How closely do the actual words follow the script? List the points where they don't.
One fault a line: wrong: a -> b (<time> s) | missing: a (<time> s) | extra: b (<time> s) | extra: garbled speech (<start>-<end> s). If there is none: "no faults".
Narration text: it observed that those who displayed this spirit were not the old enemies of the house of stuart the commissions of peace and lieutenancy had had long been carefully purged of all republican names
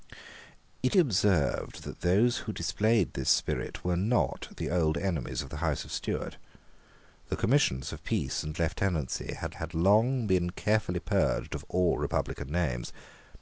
no faults